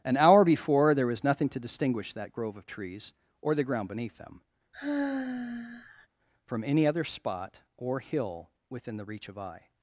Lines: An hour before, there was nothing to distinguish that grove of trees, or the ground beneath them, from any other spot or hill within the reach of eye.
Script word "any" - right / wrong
right